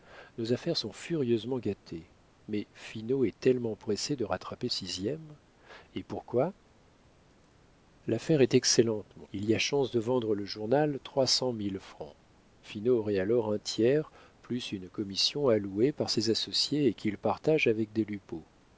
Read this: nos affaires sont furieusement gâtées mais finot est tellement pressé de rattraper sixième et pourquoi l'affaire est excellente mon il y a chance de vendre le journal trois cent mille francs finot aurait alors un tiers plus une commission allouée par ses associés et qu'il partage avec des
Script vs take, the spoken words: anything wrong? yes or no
no